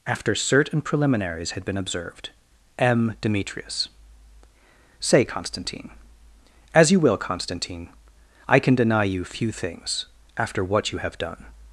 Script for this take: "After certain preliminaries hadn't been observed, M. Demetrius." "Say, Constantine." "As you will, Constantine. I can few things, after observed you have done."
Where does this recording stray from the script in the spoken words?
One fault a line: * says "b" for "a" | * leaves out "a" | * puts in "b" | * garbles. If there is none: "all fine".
* says "had" for "hadn't"
* puts in "deny you"
* says "what" for "observed"